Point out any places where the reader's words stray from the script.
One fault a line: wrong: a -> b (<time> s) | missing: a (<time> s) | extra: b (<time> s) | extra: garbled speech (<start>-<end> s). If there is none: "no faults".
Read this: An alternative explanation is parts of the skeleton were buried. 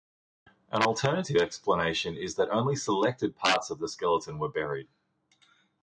extra: that only selected (2.4 s)